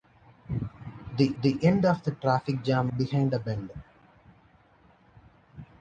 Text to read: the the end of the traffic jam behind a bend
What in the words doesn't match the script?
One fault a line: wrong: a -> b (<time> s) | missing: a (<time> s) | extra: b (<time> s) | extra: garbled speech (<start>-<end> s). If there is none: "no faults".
no faults